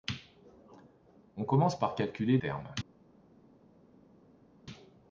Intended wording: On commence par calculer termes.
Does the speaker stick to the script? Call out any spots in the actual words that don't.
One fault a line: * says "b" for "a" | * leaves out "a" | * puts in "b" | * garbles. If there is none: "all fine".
all fine